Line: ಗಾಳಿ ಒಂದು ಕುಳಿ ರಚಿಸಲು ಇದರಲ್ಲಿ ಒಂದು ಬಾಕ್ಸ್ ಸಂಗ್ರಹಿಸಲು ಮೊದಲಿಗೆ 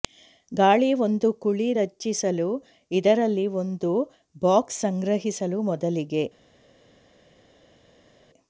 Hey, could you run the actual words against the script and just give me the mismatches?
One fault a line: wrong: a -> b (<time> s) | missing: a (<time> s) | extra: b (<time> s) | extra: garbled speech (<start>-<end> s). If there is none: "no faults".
no faults